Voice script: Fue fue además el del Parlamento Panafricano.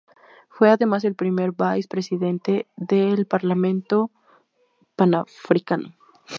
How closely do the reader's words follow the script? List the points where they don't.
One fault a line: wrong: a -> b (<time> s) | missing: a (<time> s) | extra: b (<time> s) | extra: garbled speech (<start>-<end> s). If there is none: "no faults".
missing: fue (0.7 s)
extra: primer vice presidente (1.1 s)